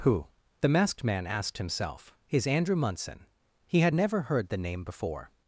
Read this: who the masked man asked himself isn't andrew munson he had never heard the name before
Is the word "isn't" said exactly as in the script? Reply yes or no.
no